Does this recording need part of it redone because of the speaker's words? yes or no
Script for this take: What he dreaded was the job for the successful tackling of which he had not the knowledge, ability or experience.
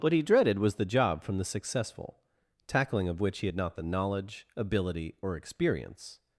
yes